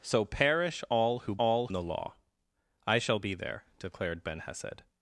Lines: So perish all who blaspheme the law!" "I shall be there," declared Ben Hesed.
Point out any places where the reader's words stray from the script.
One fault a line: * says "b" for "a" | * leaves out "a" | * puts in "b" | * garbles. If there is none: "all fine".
* says "all" for "blaspheme"